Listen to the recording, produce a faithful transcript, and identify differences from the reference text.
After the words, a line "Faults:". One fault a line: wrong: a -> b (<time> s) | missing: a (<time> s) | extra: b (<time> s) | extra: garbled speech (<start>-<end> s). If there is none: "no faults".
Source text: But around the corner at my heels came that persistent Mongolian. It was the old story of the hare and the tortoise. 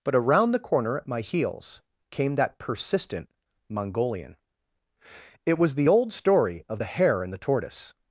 But around the corner at my heels came that persistent Mongolian. It was the old story of the hare and the tortoise.
Faults:
no faults